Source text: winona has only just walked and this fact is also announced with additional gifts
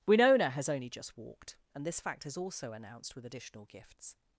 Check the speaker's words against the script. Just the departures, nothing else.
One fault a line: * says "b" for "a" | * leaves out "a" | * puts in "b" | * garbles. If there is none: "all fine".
all fine